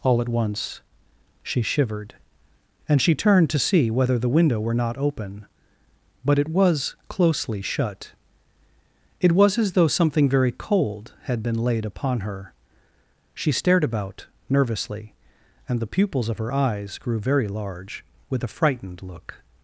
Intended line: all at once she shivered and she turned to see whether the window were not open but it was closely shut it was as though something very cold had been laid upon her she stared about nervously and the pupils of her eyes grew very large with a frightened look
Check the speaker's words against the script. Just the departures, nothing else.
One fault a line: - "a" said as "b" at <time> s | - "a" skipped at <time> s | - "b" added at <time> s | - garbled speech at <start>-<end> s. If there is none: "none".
none